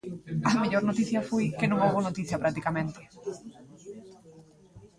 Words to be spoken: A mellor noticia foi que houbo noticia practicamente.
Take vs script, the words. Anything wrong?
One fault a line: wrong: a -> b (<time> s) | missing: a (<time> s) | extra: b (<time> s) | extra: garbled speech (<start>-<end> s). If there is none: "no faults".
extra: non (1.7 s)